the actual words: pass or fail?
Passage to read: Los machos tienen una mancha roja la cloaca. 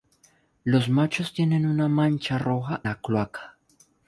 pass